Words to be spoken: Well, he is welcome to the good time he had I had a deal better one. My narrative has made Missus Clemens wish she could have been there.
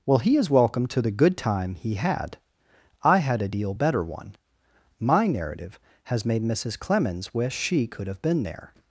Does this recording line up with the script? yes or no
yes